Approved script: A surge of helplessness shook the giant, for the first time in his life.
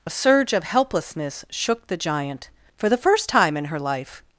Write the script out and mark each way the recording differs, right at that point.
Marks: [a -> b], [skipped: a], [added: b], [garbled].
A surge of helplessness shook the giant, for the first time in [his -> her] life.